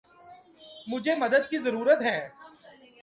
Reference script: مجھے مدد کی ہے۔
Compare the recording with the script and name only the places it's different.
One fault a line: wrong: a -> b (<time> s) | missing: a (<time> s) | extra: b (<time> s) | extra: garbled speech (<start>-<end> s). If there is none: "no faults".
extra: ضرورت (1.6 s)